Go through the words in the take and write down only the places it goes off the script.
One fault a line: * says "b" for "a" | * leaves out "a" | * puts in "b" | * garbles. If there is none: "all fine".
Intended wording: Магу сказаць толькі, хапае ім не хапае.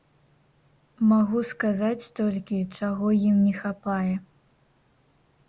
* says "чаго" for "хапае"